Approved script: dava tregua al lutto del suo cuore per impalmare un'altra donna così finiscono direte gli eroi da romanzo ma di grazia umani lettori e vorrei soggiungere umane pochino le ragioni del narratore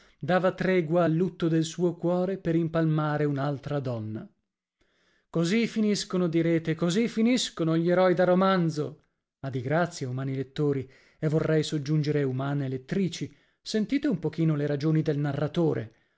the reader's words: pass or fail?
fail